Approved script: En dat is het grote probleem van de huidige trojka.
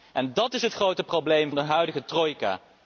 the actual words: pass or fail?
fail